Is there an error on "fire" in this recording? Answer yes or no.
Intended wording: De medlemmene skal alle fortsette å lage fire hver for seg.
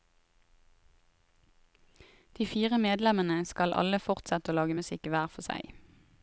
yes